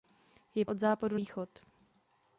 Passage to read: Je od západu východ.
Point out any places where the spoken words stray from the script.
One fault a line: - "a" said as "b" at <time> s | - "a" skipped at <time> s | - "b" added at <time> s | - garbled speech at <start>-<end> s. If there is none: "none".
none